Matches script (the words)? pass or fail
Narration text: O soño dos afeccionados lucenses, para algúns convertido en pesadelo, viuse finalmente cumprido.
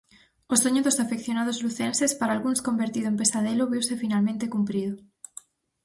pass